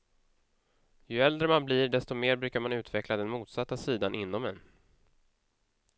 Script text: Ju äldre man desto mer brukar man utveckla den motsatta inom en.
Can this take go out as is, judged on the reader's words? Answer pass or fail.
fail